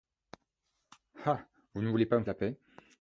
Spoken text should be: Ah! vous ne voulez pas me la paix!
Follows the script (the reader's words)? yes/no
yes